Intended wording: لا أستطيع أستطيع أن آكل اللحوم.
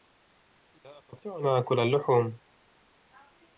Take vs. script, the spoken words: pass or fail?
fail